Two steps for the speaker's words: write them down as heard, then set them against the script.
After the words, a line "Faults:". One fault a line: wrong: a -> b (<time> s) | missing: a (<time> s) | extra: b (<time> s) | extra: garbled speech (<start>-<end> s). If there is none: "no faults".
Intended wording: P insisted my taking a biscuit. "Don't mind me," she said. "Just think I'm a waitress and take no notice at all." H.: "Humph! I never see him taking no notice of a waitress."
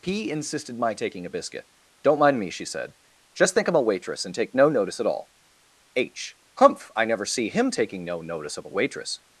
P insisted my taking a biscuit. "Don't mind me," she said. "Just think I'm a waitress and take no notice at all." H.: "Humph! I never see him taking no notice of a waitress."
Faults:
no faults